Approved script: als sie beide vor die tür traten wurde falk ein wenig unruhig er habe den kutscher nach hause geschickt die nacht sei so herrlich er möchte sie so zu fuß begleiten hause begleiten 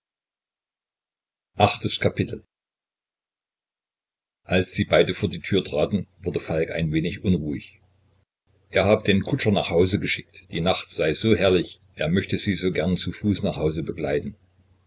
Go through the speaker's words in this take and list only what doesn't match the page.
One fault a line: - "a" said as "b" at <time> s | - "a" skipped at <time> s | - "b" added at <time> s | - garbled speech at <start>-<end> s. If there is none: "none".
- "gern" added at 12.7 s
- "begleiten" said as "nach" at 13.4 s